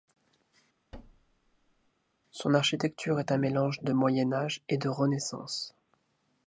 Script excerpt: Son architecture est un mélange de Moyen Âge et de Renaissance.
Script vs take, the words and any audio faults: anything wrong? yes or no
yes